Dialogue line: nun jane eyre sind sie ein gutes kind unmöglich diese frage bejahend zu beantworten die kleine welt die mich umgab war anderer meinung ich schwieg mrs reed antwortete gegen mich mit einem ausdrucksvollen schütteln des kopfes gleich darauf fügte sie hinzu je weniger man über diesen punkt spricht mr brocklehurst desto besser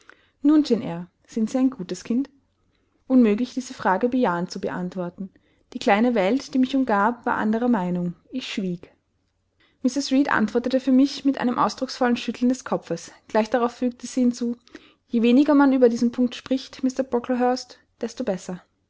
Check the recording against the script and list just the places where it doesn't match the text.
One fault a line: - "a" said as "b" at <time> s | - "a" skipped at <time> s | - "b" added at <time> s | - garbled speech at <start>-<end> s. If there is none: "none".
- "gegen" said as "für" at 10.8 s